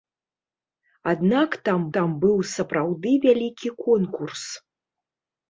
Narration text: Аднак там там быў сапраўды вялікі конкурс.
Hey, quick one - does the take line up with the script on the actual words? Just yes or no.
yes